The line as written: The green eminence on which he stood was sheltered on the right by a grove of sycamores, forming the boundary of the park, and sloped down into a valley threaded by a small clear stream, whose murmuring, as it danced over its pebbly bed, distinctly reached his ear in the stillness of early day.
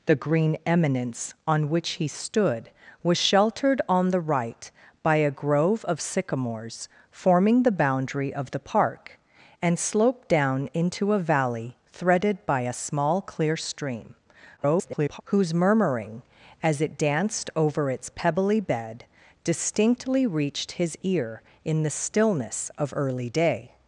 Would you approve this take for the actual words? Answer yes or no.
no